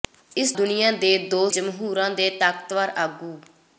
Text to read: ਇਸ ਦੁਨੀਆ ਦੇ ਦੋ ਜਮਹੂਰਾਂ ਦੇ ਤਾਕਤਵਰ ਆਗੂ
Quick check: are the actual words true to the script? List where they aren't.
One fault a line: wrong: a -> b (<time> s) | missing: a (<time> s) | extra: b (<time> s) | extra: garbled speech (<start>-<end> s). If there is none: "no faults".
no faults